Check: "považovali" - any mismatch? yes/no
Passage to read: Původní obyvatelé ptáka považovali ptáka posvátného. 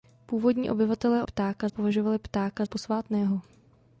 no